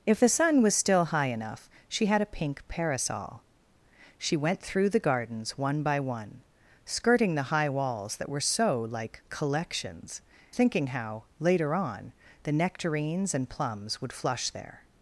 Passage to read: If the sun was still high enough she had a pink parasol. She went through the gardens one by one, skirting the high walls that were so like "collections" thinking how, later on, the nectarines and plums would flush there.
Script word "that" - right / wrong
right